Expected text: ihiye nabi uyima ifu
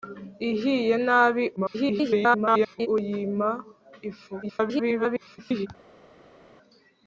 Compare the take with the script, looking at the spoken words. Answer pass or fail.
fail